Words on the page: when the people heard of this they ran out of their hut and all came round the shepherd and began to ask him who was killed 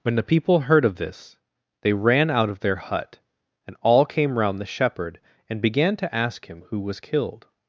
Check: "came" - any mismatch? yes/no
no